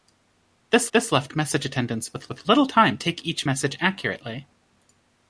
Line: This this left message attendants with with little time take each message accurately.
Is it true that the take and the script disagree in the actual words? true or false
false